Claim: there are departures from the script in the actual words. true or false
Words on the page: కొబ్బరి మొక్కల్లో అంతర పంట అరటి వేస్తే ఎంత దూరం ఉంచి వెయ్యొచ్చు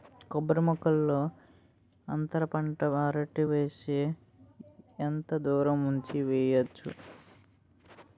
false